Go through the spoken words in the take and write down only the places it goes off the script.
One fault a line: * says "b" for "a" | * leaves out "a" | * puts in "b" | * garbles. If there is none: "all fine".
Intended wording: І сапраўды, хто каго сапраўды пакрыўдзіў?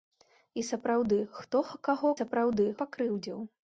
all fine